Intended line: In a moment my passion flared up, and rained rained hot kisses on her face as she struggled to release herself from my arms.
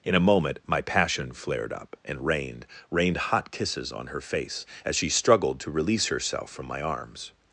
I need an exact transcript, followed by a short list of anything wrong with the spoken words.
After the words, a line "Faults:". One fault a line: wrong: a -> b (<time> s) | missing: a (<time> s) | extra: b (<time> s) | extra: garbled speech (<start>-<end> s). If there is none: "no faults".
In a moment my passion flared up, and rained rained hot kisses on her face as she struggled to release herself from my arms.
Faults:
no faults